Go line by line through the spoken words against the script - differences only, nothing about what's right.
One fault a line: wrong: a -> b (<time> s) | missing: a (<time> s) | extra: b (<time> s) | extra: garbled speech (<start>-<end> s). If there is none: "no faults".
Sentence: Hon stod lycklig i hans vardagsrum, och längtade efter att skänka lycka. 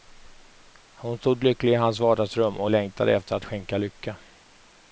no faults